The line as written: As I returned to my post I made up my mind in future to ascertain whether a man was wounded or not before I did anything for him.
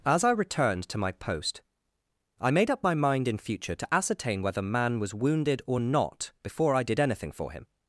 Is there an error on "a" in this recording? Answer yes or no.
yes